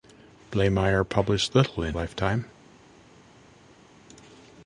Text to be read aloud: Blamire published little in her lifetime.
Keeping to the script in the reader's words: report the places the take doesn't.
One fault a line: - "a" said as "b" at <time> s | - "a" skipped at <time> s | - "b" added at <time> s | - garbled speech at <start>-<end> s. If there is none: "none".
- "her" skipped at 1.9 s